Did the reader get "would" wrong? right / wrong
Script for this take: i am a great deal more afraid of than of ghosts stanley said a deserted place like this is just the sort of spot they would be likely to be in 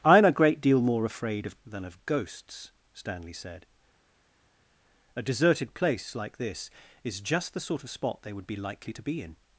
right